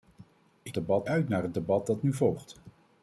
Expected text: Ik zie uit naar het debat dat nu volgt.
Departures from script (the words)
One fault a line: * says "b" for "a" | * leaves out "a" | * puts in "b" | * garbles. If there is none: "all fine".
* says "debat" for "zie"